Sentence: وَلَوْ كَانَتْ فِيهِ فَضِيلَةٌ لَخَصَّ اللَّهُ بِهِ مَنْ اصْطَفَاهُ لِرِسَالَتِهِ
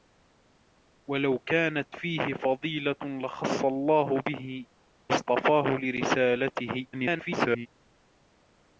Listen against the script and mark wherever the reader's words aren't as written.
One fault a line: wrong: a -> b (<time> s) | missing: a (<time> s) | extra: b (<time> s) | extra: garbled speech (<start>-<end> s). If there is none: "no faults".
missing: مَنْ (4.6 s)
extra: garbled speech (6.9-7.7 s)